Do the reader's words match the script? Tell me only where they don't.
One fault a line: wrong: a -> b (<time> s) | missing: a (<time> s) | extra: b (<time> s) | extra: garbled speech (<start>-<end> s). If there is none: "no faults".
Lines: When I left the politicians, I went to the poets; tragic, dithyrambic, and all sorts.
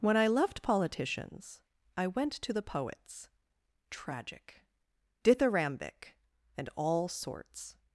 missing: the (0.6 s)